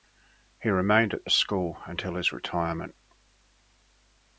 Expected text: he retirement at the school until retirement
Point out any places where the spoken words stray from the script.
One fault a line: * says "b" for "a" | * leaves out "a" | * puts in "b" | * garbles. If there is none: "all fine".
* says "remained" for "retirement"
* puts in "his"